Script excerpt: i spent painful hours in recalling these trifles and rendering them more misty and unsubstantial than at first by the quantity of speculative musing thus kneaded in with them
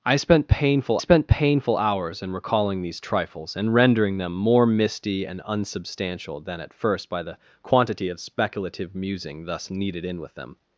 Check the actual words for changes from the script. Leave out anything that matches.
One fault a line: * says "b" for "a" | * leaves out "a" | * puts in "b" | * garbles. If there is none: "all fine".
* puts in "spent painful"